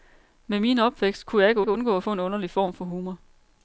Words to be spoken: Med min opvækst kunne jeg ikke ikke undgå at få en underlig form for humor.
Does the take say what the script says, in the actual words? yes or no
yes